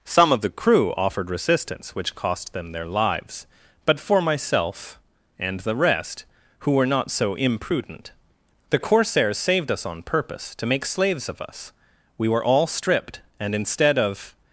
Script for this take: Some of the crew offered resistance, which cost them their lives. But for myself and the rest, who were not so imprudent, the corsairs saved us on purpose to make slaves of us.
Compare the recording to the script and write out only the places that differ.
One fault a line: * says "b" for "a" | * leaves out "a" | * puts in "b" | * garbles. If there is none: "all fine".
* puts in "We were all stripped and instead of"